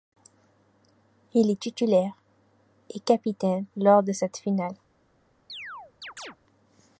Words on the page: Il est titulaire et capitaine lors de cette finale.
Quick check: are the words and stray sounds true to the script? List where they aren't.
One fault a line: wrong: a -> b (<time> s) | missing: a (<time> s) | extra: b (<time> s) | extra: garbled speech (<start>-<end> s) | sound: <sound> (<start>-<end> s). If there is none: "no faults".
sound: chirp (5.5-6.4 s)